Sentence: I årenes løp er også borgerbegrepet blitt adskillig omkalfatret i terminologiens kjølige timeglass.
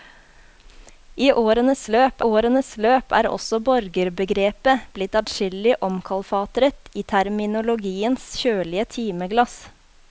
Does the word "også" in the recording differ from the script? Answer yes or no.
no